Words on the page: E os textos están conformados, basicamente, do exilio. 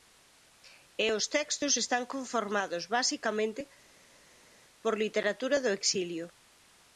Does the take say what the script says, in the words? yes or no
no